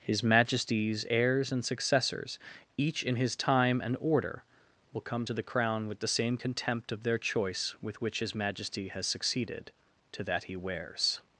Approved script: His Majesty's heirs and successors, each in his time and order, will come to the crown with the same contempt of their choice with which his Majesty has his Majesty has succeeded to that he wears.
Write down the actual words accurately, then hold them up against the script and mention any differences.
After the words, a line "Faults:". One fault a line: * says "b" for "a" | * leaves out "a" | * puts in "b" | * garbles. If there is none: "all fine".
His Majesty's heirs and successors, each in his time and order, will come to the crown with the same contempt of their choice with which his Majesty has succeeded to that he wears.
Faults:
* leaves out "his Majesty has"